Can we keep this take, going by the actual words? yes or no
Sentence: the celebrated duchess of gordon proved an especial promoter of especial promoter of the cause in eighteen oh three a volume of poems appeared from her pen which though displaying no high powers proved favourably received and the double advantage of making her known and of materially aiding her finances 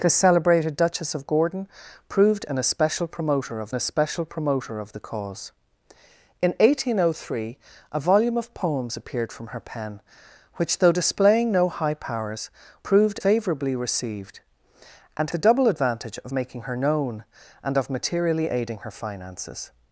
yes